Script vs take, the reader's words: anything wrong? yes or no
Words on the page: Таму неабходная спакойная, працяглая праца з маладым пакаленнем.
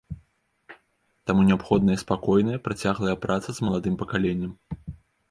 no